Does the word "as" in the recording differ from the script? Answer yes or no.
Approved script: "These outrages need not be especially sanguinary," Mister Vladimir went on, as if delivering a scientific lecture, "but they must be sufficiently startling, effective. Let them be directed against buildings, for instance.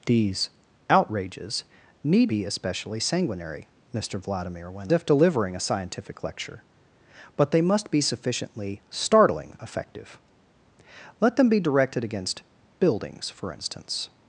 yes